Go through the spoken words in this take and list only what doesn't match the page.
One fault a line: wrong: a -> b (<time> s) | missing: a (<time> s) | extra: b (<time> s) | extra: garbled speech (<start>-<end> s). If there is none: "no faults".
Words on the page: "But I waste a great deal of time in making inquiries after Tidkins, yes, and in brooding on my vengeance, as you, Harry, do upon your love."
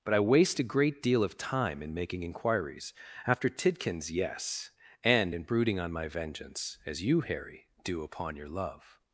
no faults